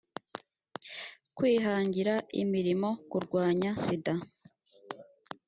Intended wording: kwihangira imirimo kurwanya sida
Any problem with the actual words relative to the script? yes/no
no